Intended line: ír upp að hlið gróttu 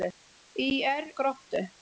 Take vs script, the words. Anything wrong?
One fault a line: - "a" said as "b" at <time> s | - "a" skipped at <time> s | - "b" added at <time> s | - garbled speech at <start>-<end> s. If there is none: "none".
- "upp að hlið" skipped at 1.1 s